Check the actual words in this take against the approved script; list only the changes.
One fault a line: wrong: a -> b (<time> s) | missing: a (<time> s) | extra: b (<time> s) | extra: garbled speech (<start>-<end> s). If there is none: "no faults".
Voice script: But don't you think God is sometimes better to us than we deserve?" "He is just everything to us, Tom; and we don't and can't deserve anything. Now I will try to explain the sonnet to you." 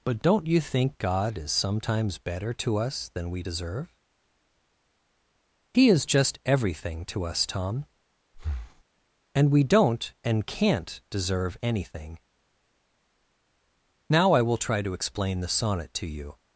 no faults